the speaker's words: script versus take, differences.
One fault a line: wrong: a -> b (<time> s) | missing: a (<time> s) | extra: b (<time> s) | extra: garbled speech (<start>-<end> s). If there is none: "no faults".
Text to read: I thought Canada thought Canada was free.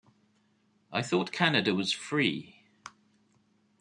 missing: thought Canada (1.8 s)